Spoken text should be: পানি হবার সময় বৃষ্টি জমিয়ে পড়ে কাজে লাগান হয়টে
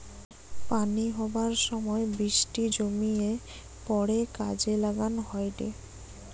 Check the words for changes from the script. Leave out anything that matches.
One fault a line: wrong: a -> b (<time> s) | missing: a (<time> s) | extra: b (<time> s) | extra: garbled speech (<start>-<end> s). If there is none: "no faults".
no faults